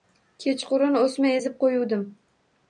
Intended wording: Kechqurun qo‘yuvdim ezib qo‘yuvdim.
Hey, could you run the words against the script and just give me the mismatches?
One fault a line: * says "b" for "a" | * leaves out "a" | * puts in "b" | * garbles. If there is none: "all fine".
* says "o‘sma" for "qo‘yuvdim"